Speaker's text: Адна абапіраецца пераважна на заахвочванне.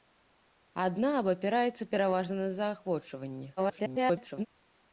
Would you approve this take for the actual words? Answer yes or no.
no